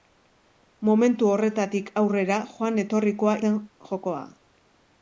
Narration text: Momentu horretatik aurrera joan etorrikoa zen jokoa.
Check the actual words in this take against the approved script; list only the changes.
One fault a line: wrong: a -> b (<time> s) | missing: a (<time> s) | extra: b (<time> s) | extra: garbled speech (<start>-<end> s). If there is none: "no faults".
no faults